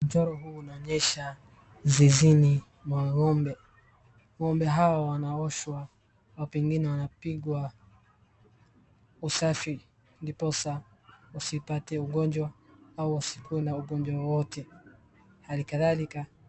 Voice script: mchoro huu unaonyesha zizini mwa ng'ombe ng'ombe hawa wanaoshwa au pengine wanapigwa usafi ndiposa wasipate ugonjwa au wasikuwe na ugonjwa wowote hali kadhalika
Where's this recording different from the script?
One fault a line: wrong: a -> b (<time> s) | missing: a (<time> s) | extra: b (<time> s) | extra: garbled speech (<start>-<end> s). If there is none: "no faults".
no faults